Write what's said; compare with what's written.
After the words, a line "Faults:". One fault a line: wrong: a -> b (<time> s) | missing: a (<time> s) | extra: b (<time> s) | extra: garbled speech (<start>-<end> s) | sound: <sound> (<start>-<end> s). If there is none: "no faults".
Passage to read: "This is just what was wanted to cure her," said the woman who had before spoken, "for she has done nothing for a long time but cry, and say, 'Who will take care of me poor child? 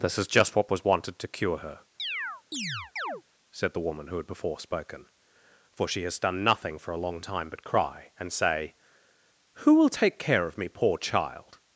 "This is just what was wanted to cure her," said the woman who had before spoken, "for she has done nothing for a long time but cry, and say, 'Who will take care of me poor child?
Faults:
sound: chirp (2.0-3.2 s)